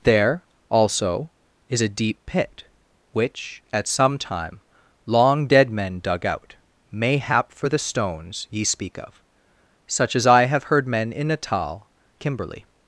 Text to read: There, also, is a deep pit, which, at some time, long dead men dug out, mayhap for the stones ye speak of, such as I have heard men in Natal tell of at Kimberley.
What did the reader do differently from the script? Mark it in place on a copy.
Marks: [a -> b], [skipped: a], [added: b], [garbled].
There, also, is a deep pit, which, at some time, long dead men dug out, mayhap for the stones ye speak of, such as I have heard men in Natal [skipped: tell of at] Kimberley.